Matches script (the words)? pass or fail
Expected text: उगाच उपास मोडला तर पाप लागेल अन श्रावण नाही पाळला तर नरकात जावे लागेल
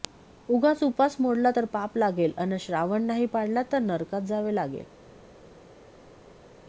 pass